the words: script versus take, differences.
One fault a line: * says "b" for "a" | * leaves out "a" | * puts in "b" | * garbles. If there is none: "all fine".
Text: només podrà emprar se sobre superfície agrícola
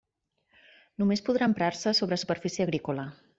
all fine